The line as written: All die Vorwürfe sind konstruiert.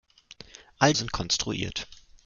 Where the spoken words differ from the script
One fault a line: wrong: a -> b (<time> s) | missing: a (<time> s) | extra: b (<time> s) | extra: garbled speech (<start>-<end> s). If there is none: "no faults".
missing: die Vorwürfe (0.9 s)